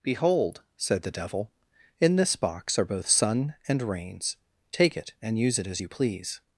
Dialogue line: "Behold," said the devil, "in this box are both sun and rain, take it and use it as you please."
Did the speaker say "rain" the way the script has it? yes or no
no